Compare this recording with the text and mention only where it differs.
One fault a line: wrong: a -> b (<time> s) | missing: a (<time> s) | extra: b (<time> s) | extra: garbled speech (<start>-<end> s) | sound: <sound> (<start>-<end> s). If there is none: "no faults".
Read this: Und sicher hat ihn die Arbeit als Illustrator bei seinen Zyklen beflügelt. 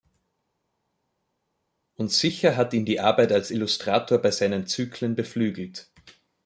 no faults